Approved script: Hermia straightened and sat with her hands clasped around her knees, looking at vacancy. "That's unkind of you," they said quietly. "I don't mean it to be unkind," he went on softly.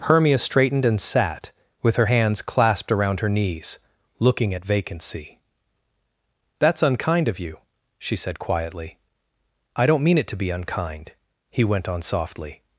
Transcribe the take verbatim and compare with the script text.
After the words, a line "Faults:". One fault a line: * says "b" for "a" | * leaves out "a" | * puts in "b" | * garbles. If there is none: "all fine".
Hermia straightened and sat with her hands clasped around her knees, looking at vacancy. "That's unkind of you," she said quietly. "I don't mean it to be unkind," he went on softly.
Faults:
* says "she" for "they"